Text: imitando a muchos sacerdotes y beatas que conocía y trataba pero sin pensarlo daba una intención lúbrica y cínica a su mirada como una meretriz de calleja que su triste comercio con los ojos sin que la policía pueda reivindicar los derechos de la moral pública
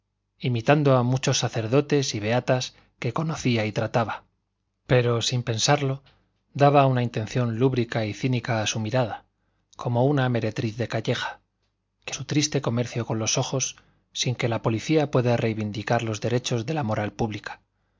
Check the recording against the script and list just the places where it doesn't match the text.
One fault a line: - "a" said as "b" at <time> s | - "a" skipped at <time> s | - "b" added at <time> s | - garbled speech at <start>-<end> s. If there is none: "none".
none